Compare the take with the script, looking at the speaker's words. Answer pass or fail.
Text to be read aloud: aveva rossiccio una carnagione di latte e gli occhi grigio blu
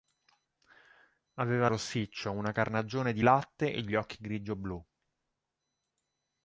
pass